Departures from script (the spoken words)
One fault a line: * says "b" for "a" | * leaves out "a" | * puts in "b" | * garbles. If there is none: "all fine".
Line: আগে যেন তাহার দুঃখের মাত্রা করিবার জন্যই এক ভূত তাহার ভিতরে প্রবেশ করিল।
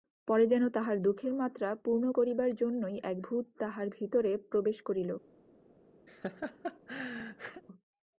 * says "পরে" for "আগে"
* puts in "পূর্ণ"